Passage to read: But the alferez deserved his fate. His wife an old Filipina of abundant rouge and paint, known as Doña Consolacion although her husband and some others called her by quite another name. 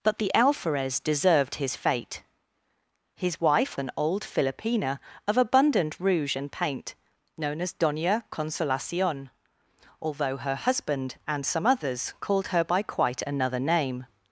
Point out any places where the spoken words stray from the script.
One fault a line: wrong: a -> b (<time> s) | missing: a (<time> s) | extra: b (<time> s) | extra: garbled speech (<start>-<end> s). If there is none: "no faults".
no faults